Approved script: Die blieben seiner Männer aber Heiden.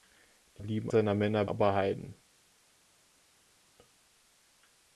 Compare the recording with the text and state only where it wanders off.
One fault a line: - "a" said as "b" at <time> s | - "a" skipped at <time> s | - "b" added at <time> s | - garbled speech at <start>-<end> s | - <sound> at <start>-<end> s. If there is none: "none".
none